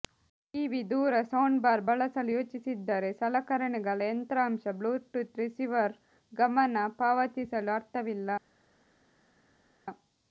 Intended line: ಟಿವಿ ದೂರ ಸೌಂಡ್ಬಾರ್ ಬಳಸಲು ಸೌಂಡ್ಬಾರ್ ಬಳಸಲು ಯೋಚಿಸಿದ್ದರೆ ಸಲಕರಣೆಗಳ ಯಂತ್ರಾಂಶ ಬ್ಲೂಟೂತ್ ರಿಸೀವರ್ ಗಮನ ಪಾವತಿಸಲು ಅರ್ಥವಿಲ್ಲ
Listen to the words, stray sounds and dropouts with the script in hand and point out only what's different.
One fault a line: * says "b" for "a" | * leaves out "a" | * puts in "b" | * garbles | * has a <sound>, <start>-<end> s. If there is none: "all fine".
* leaves out "ಸೌಂಡ್ಬಾರ್ ಬಳಸಲು"